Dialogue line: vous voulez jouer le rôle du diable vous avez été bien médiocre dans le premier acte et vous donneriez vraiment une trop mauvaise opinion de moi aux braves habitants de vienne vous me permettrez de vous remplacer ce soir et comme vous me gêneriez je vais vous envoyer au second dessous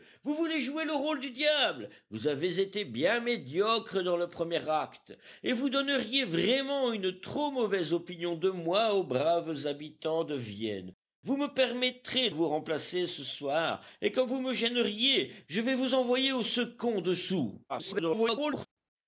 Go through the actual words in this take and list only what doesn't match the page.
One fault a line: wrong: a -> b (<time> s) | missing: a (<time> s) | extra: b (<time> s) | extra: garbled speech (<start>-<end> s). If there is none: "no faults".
missing: de (12.3 s)
extra: garbled speech (17.7-18.7 s)